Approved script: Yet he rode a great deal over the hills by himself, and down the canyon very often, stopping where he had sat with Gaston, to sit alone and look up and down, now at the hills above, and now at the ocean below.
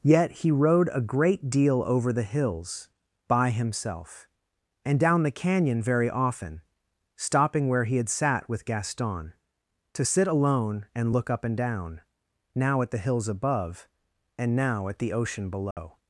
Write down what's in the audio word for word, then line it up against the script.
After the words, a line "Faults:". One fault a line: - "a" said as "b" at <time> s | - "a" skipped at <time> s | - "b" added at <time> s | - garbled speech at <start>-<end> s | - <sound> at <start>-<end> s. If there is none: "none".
Yet he rode a great deal over the hills by himself, and down the canyon very often, stopping where he had sat with Gaston, to sit alone and look up and down, now at the hills above, and now at the ocean below.
Faults:
- dropout at 15.7-15.8 s